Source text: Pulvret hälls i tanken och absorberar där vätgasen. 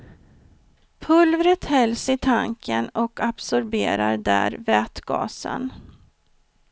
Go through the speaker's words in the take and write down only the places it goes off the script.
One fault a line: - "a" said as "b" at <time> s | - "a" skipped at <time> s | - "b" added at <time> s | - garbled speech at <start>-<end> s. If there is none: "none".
none